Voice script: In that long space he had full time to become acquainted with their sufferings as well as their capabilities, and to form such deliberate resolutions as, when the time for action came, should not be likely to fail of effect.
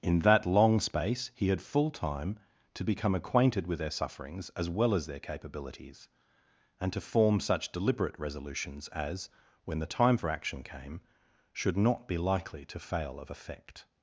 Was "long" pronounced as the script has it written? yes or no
yes